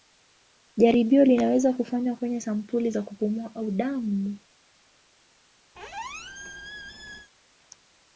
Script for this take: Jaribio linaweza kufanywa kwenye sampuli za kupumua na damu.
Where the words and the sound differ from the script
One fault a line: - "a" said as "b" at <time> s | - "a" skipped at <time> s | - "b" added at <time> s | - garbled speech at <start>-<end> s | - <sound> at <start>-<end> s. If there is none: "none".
- "na" said as "au" at 3.6 s
- squeak at 5.8-7.3 s